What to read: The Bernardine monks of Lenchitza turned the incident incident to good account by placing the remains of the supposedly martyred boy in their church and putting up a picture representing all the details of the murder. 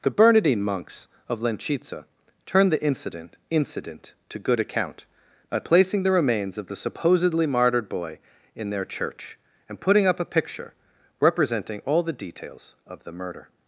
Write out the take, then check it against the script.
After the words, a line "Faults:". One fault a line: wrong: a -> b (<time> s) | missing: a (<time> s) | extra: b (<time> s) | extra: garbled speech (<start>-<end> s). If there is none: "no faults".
The Bernardine monks of Lenchitza turned the incident incident to good account by placing the remains of the supposedly martyred boy in their church and putting up a picture representing all the details of the murder.
Faults:
no faults